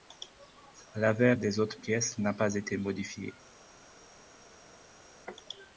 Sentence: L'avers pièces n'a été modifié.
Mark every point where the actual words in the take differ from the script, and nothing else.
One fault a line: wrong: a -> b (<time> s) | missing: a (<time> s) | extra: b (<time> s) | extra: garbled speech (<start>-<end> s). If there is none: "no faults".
extra: des autres (1.3 s)
extra: pas (2.3 s)